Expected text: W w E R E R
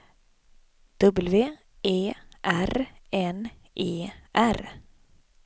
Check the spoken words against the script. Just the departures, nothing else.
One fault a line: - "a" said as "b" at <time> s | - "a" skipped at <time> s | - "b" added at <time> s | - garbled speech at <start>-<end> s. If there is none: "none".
- "w" skipped at 1.6 s
- "N" added at 3.1 s